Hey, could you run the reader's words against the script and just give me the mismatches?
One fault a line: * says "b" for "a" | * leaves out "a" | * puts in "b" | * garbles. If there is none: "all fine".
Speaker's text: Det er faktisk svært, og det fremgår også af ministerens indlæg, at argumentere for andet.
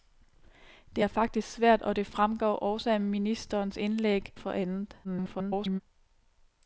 * leaves out "at argumentere"
* garbles